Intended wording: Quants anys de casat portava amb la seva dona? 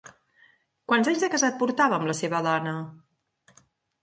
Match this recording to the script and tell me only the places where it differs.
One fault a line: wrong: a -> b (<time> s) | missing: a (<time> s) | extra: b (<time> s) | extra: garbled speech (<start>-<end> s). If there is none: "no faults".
no faults